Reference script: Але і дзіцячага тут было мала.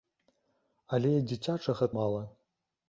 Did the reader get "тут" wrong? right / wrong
wrong